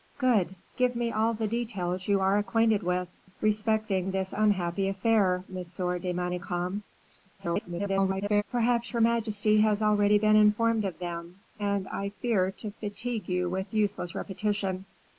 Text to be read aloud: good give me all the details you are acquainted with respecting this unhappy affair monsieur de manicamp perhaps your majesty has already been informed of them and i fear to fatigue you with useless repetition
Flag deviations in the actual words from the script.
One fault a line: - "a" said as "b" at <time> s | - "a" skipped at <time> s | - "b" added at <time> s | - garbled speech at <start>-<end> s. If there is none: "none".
- garbled speech at 7.4-8.4 s